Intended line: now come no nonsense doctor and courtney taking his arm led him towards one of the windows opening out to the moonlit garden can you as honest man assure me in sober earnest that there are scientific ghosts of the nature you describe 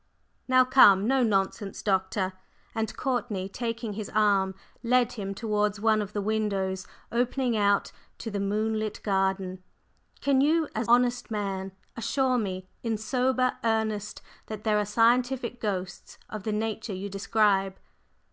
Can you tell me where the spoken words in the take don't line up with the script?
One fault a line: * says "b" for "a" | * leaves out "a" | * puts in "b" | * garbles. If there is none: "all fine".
all fine